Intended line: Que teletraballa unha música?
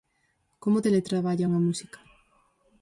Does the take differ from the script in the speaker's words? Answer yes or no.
yes